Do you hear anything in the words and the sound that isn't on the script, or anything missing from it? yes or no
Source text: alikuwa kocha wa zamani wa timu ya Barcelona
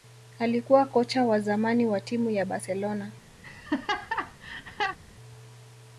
yes